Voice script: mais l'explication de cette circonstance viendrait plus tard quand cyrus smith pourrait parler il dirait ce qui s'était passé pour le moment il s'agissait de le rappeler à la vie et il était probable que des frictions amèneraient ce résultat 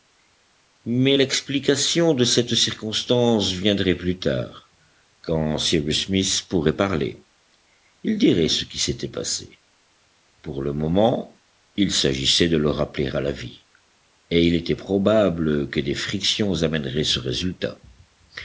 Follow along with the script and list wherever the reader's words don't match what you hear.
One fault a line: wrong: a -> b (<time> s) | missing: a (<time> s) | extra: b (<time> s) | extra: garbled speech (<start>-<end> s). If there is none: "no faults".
no faults